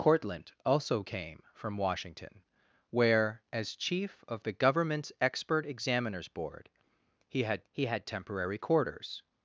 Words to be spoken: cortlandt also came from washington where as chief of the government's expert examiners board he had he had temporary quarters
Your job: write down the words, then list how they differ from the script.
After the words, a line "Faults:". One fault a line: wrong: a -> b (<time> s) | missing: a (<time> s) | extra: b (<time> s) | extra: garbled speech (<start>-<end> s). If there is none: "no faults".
cortlandt also came from washington where as chief of the government's expert examiners board he had he had temporary quarters
Faults:
no faults